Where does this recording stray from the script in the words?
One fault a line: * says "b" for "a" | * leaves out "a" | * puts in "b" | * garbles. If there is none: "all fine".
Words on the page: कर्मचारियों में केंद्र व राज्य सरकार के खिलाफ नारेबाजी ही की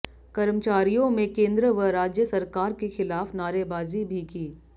* says "भी" for "ही"